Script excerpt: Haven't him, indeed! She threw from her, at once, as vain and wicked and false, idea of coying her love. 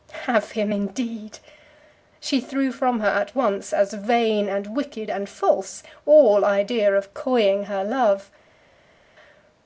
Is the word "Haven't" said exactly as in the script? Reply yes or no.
no